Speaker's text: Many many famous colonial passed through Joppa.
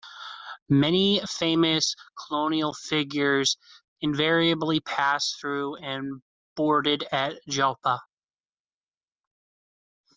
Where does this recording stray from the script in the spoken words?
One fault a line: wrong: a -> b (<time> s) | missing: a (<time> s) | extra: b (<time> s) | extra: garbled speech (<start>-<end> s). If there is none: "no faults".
missing: many (1.2 s)
extra: figures invariably (2.7 s)
extra: and boarded at (5.7 s)